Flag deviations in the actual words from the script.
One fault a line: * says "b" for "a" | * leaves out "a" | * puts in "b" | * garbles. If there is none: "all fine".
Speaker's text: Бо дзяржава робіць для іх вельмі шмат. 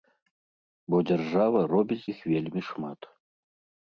* leaves out "для"